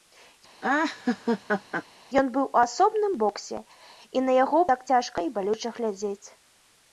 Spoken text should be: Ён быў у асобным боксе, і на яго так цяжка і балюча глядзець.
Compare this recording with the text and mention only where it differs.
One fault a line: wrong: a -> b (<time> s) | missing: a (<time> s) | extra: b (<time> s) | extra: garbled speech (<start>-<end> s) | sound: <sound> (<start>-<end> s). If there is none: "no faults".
sound: laugh (0.6-1.8 s)